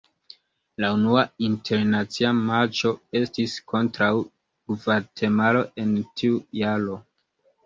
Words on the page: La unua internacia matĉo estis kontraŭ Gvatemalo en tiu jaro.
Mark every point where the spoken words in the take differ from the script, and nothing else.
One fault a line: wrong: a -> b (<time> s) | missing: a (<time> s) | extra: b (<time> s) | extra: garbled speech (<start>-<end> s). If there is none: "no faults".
no faults